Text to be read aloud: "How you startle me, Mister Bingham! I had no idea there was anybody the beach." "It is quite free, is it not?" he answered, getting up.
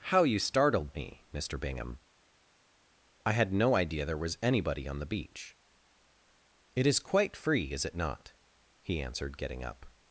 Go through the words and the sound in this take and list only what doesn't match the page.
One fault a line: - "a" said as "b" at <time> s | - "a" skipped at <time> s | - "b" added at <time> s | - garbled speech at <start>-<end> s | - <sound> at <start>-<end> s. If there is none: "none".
- "startle" said as "startled" at 0.4 s
- "on" added at 4.9 s